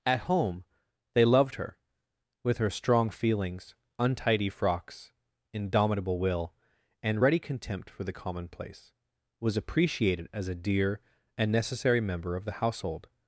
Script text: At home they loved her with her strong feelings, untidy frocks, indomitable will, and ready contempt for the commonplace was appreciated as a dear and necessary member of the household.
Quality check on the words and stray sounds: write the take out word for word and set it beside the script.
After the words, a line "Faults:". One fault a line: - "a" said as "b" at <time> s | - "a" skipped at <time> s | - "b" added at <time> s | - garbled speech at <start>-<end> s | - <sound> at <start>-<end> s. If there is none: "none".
At home they loved her with her strong feelings, untidy frocks, indomitable will, and ready contempt for the commonplace was appreciated as a dear and necessary member of the household.
Faults:
none